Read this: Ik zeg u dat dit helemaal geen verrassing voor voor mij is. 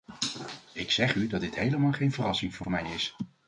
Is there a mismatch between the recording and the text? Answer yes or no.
no